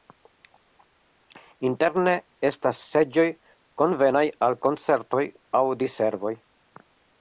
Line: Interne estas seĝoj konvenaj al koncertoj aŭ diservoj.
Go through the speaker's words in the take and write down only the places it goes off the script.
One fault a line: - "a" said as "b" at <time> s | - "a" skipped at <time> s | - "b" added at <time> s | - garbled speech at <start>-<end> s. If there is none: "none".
none